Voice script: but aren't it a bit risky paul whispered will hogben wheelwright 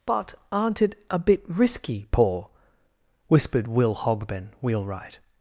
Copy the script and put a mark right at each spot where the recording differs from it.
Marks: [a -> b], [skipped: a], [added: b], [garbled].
but aren't it a bit risky paul whispered will hogben wheelwright